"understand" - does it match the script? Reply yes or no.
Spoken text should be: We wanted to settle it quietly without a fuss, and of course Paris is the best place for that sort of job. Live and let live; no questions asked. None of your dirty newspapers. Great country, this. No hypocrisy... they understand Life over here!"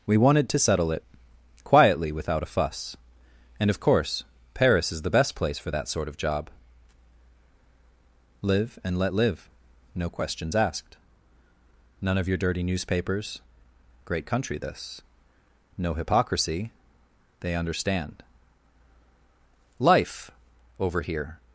yes